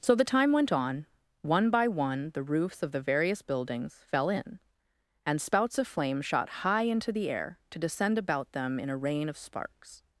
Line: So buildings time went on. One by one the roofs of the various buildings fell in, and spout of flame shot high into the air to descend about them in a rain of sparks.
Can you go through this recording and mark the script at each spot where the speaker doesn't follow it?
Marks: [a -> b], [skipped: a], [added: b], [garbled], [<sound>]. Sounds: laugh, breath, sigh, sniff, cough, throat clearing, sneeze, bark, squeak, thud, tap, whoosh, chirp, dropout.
So [buildings -> the] time went on. One by one the roofs of the various buildings fell in, and [spout -> spouts] of flame shot high into the air to descend about them in a rain of sparks.